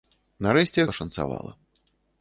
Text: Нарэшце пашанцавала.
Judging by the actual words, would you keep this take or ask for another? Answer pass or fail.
pass